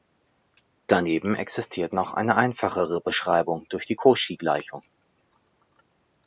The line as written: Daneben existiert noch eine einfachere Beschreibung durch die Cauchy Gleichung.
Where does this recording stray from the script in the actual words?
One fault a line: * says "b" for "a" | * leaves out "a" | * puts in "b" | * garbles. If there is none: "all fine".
all fine